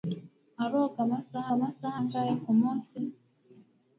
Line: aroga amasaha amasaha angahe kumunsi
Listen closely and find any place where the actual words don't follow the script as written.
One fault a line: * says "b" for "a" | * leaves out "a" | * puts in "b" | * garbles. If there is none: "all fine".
all fine